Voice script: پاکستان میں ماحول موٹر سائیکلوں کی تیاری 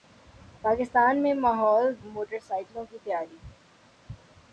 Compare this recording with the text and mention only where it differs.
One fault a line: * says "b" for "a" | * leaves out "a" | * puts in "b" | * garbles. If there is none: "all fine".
all fine